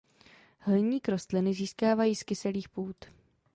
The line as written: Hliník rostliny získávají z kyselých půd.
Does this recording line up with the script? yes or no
yes